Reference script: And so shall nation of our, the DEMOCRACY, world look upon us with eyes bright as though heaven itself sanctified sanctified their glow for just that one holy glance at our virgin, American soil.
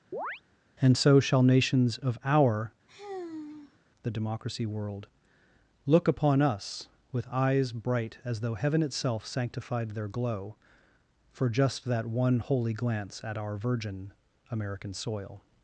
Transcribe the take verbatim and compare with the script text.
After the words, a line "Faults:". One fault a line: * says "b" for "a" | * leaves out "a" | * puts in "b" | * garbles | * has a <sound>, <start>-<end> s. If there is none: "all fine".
And so shall nations of our, the DEMOCRACY, world look upon us with eyes bright as though heaven itself sanctified their glow for just that one holy glance at our virgin, American soil.
Faults:
* has a chirp, 0.1-0.4 s
* says "nations" for "nation"
* has a sigh, 2.9-3.8 s
* leaves out "sanctified"